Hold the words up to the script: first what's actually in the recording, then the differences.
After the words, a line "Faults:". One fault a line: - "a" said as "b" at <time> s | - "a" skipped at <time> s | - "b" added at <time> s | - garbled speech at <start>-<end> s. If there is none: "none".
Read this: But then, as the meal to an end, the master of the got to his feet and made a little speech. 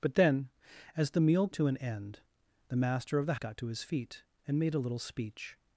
But then, as the meal to an end, the master of the got to his feet and made a little speech.
Faults:
none